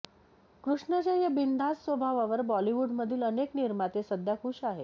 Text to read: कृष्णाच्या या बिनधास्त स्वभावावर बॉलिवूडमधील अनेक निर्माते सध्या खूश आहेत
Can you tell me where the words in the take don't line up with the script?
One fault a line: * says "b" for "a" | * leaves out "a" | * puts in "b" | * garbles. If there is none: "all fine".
all fine